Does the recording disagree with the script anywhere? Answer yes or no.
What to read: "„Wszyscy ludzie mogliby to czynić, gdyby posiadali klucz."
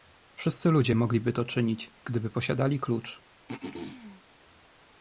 no